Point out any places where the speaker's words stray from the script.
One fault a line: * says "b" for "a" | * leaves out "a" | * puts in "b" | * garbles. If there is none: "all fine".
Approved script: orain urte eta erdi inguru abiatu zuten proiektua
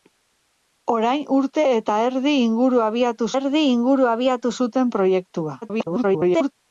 * puts in "erdi inguru abiatu"
* garbles